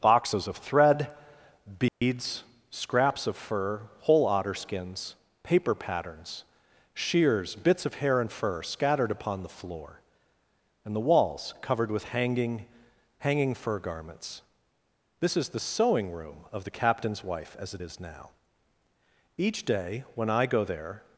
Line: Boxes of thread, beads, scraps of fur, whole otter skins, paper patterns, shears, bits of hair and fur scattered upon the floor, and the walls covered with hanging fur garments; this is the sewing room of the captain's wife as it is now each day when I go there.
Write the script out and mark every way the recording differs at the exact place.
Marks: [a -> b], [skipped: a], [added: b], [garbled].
Boxes of thread, beads, scraps of fur, whole otter skins, paper patterns, shears, bits of hair and fur scattered upon the floor, and the walls covered with hanging [added: hanging] fur garments; this is the sewing room of the captain's wife as it is now each day when I go there.